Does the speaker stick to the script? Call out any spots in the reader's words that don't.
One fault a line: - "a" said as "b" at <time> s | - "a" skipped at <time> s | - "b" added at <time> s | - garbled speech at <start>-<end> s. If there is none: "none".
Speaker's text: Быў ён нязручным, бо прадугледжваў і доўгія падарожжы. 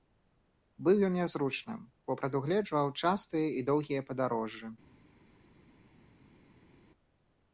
- "частыя" added at 3.0 s